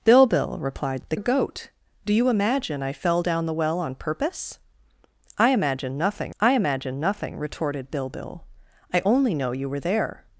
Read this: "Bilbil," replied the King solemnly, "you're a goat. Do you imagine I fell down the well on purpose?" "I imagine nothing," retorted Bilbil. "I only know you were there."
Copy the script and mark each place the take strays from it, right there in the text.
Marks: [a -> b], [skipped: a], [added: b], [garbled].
"Bilbil," replied the [skipped: King solemnly, "you're] a goat. Do you imagine I fell down the well on purpose?" "I imagine nothing," [added: I imagine nothing] retorted Bilbil. "I only know you were there."